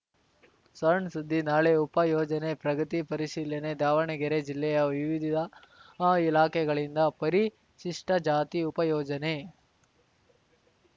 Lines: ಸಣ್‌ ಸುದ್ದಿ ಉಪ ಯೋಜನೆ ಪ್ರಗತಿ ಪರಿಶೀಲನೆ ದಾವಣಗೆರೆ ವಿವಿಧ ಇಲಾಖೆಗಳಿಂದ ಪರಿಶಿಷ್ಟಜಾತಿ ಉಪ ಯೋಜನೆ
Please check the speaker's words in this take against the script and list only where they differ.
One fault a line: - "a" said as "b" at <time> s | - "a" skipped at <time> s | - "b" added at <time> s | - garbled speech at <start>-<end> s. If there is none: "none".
- "ನಾಳೆ" added at 1.5 s
- "ಜಿಲ್ಲೆಯ" added at 4.5 s